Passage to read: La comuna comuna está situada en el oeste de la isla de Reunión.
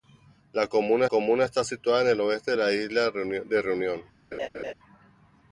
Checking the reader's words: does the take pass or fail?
pass